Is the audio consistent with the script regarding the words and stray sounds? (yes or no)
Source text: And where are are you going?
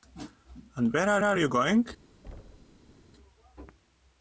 no